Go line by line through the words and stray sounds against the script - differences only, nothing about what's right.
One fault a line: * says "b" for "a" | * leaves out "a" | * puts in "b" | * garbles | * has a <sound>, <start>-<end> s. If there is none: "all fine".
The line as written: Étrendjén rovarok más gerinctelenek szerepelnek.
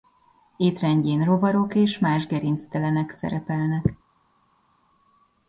* puts in "és"